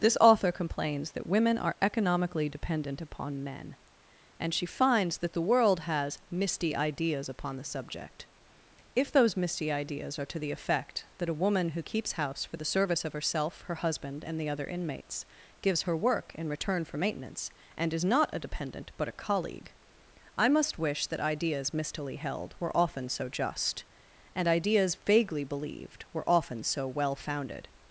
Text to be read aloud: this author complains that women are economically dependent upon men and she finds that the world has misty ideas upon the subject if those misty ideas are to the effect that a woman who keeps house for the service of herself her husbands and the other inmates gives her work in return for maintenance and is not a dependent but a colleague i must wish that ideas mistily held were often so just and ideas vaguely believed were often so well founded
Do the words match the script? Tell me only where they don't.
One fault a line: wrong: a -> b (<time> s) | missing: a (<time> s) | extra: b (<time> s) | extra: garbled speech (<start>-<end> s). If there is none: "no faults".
wrong: husbands -> husband (13.8 s)